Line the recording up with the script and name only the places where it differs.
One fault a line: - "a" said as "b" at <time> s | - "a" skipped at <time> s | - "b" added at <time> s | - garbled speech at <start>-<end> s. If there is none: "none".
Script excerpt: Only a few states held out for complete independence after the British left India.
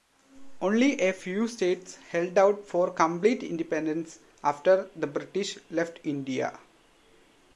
none